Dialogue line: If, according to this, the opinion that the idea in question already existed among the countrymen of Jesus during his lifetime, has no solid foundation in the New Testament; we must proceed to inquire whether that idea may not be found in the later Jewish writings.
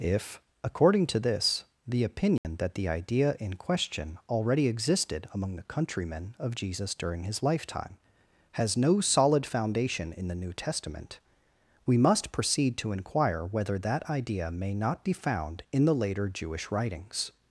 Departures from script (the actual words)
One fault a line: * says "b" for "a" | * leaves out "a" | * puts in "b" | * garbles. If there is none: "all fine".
all fine